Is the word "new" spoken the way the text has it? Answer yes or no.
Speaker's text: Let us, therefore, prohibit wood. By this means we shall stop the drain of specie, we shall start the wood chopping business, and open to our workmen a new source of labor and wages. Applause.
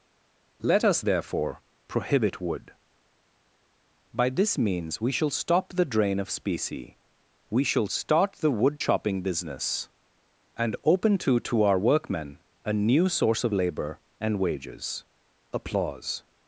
yes